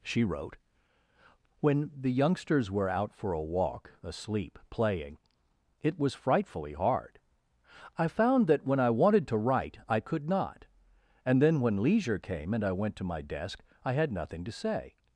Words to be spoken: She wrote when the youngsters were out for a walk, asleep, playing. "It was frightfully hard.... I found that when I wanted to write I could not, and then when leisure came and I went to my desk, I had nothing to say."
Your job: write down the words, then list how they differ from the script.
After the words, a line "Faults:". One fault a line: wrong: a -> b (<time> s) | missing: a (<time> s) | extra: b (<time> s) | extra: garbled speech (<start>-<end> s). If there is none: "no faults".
She wrote when the youngsters were out for a walk, asleep, playing. "It was frightfully hard.... I found that when I wanted to write I could not, and then when leisure came and I went to my desk, I had nothing to say."
Faults:
no faults